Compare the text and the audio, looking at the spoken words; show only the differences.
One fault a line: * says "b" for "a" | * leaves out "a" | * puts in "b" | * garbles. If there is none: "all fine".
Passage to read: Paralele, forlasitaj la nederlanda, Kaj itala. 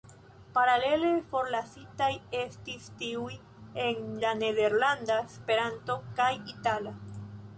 * puts in "estis tiuj en"
* puts in "Esperanto"